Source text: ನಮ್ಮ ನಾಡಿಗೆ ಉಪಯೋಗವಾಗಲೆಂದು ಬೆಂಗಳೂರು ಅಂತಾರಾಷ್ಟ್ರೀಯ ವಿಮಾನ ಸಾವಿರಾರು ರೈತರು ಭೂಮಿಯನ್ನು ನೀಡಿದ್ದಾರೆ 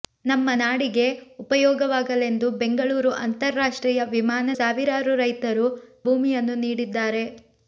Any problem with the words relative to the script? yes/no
no